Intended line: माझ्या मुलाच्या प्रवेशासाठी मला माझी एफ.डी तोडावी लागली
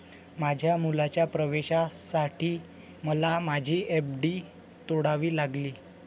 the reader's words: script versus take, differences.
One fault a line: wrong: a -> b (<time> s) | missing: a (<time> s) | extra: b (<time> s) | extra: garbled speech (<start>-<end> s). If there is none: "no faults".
no faults